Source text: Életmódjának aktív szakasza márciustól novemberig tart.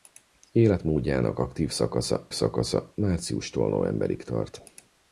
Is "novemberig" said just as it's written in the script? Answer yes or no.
yes